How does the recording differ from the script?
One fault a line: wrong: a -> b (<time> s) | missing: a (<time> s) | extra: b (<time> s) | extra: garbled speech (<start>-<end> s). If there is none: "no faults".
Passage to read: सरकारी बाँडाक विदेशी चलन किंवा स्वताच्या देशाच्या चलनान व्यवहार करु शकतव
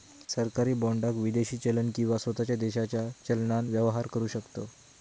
no faults